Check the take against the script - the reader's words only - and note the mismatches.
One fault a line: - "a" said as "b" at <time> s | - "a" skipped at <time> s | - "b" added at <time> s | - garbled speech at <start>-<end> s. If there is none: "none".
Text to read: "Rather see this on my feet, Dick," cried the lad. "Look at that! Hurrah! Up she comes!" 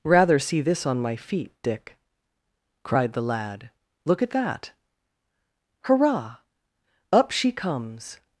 none